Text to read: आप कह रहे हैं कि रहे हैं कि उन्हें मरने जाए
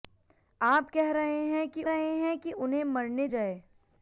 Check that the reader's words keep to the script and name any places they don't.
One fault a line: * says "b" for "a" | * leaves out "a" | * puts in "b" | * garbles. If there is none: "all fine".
all fine